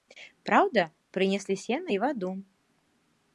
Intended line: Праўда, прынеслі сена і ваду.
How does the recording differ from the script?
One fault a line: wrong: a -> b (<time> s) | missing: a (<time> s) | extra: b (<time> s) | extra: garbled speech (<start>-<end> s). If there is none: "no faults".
no faults